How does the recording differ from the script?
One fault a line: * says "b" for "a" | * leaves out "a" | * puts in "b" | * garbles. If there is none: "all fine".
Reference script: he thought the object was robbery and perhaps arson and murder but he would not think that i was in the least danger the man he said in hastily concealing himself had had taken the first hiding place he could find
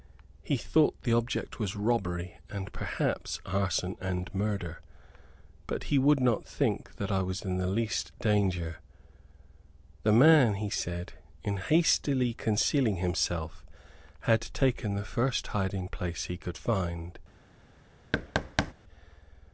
* leaves out "had"